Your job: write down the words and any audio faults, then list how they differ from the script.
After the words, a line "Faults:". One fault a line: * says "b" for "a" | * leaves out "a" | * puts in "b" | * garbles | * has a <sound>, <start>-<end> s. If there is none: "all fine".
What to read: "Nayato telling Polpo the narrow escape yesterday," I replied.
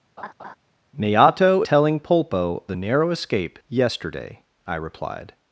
"Nayato telling Polpo the narrow escape yesterday," I replied.
Faults:
* has a laugh, 0.2-0.6 s